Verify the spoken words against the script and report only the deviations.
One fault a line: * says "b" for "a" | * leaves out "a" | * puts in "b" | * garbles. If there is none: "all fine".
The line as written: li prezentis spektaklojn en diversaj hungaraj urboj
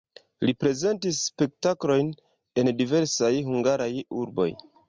all fine